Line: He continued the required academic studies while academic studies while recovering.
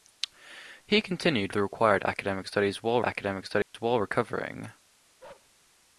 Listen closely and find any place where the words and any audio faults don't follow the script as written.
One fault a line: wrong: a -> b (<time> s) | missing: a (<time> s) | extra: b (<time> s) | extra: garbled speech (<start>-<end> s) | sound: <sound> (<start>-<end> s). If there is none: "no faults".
sound: dropout (3.6-3.7 s)
sound: bark (5.2-5.5 s)